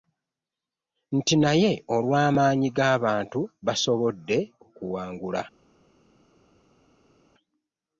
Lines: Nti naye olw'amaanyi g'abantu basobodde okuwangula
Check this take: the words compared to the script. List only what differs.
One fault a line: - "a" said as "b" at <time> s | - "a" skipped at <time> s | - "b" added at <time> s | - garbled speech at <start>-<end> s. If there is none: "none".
none